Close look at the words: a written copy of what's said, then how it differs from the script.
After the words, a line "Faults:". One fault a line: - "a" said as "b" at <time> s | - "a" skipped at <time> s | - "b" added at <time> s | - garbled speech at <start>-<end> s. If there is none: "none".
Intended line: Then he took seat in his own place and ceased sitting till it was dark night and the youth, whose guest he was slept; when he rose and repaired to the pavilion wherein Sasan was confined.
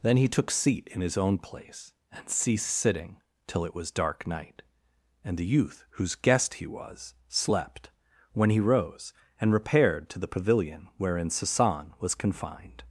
Then he took seat in his own place and ceased sitting till it was dark night and the youth, whose guest he was slept; when he rose and repaired to the pavilion wherein Sasan was confined.
Faults:
none